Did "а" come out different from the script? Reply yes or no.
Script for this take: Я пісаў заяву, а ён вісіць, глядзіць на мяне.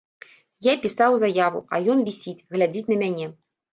no